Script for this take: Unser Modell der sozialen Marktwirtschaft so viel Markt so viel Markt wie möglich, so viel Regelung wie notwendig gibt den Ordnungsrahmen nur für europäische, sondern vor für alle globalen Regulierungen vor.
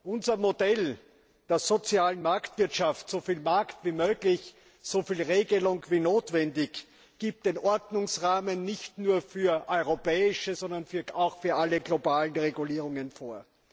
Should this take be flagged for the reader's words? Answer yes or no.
yes